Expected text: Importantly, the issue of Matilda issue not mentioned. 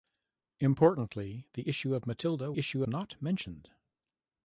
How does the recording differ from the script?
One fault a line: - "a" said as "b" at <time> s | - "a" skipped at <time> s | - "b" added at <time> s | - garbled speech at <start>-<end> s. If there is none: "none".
none